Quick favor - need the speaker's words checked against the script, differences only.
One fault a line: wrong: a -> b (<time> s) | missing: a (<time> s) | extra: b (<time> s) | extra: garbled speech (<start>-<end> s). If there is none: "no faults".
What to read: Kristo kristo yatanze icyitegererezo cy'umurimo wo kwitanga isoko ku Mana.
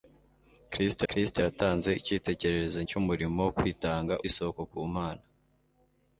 no faults